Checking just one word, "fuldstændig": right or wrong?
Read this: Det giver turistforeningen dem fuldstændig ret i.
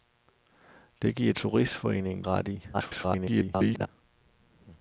wrong